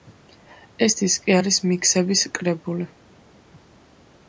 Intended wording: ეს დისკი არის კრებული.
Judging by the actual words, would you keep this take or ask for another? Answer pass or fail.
fail